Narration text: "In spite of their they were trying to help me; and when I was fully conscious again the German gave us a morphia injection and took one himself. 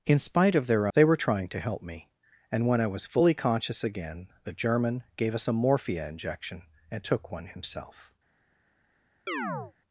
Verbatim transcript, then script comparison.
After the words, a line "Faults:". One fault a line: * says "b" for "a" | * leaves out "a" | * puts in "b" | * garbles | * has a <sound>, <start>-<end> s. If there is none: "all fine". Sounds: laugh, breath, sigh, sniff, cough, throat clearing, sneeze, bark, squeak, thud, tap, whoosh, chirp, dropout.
"In spite of their they were trying to help me; and when I was fully conscious again the German gave us a morphia injection and took one himself.
Faults:
* has a chirp, 9.3-9.7 s